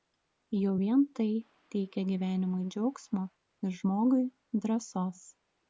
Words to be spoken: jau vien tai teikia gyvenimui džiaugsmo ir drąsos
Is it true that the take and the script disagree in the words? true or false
true